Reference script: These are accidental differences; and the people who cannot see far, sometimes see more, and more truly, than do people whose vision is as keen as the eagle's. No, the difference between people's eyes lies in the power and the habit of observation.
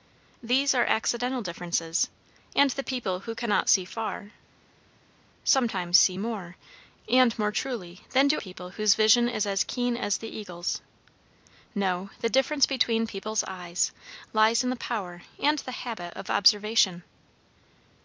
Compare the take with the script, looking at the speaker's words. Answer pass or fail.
pass